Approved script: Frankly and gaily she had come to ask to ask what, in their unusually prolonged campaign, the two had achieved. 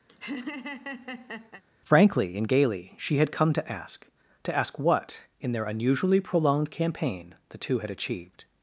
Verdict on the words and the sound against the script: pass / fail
fail